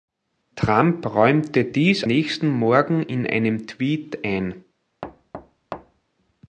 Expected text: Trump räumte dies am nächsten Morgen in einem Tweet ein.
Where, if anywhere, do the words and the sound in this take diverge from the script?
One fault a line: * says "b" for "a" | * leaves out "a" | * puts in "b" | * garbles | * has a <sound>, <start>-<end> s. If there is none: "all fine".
* leaves out "am"
* has a thud, 5.0-6.1 s